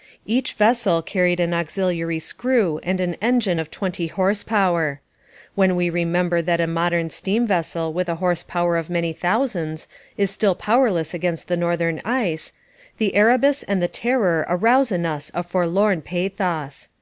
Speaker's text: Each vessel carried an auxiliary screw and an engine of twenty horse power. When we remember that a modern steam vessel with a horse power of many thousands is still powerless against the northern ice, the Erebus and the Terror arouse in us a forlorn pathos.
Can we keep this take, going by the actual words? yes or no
yes